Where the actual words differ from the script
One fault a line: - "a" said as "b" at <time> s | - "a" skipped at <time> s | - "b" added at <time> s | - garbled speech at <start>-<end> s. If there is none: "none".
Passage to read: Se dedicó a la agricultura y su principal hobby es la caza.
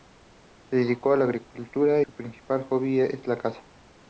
- "y" skipped at 2.0 s